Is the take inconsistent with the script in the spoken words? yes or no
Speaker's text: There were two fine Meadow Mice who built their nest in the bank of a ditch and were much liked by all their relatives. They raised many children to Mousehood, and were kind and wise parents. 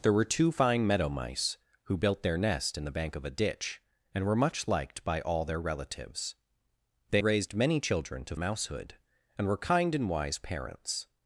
no